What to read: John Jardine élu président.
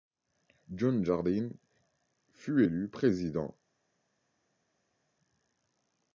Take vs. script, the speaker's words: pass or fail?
fail